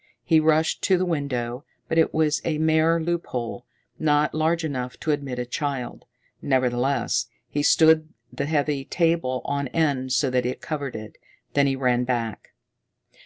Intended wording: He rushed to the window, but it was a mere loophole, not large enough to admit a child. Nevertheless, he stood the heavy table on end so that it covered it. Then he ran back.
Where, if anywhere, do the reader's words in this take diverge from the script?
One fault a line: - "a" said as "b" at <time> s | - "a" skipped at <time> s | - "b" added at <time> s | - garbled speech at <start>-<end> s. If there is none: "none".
none